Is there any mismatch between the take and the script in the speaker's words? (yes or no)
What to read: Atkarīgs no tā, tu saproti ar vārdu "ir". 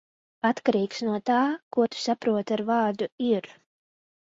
yes